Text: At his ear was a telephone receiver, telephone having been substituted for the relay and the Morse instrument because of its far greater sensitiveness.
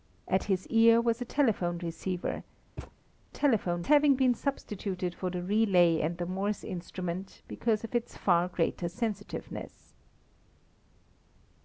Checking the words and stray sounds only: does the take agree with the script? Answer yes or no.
no